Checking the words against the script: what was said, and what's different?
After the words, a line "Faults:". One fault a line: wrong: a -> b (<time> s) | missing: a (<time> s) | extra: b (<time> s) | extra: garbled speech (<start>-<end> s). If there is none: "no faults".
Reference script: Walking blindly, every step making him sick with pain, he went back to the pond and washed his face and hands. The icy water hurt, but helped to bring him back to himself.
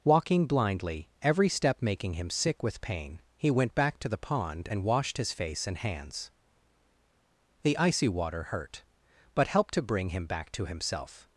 Walking blindly, every step making him sick with pain, he went back to the pond and washed his face and hands. The icy water hurt, but helped to bring him back to himself.
Faults:
no faults